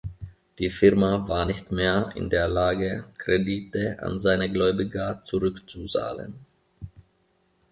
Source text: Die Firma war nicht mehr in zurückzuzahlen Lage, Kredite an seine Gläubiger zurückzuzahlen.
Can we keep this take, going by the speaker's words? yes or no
no